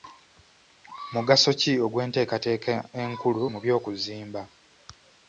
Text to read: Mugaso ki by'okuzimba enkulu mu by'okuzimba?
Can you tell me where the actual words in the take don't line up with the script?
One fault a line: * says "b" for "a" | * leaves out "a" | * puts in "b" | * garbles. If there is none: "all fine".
* says "ogw'enteekateeka" for "by'okuzimba"